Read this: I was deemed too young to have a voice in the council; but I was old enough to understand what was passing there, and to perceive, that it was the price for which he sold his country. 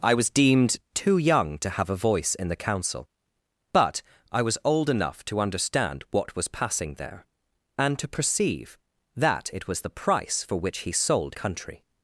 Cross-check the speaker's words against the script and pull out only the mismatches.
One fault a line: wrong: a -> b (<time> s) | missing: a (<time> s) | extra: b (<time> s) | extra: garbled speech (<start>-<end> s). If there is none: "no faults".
missing: his (11.3 s)